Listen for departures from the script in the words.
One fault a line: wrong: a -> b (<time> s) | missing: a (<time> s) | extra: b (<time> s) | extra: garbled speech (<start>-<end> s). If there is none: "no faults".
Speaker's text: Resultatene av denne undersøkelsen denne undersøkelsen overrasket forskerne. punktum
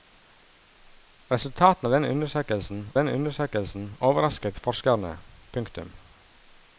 no faults